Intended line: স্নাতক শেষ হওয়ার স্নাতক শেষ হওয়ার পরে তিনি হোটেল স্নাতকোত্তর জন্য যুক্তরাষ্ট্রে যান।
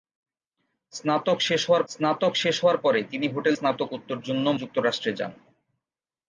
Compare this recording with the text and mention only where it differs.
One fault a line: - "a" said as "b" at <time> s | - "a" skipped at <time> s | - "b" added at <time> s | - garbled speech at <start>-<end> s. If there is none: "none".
none